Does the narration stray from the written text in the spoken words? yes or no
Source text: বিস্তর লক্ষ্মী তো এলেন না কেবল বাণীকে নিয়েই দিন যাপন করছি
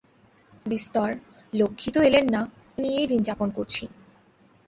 yes